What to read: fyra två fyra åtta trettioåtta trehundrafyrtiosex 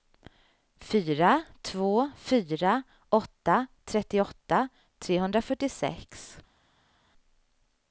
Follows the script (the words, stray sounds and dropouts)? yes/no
yes